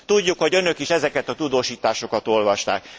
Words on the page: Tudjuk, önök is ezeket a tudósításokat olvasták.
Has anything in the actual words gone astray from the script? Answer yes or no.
yes